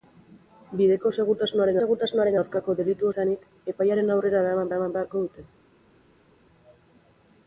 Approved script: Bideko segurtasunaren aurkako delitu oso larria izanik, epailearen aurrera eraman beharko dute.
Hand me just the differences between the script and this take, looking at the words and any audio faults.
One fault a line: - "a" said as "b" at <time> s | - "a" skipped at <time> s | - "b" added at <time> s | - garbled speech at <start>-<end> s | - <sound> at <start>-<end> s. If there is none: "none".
- "segurtasunaren" added at 1.8 s
- "oso larria" skipped at 3.1 s
- "eraman" added at 4.7 s